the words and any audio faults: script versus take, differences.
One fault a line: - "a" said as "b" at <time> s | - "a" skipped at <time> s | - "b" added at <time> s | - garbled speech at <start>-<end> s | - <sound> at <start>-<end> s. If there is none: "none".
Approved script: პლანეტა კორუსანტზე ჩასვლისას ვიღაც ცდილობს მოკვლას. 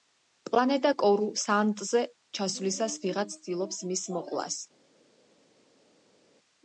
- "მის" added at 3.9 s